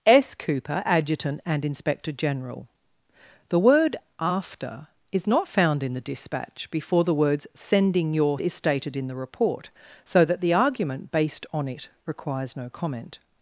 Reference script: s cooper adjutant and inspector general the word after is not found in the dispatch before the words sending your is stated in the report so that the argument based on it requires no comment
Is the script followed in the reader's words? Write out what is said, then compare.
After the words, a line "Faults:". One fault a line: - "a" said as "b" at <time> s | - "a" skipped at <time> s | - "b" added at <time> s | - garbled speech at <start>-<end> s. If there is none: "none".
s cooper adjutant and inspector general the word after is not found in the dispatch before the words sending your is stated in the report so that the argument based on it requires no comment
Faults:
none